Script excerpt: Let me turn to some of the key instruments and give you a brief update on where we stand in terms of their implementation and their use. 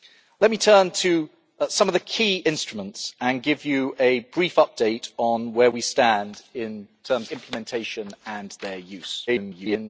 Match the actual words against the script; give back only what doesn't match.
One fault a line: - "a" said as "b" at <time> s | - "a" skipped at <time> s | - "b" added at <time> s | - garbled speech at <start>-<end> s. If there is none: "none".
- "their" skipped at 7.3 s
- garbled speech at 9.3-9.9 s